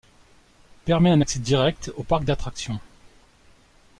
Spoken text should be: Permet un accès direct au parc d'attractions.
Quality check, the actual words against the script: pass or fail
pass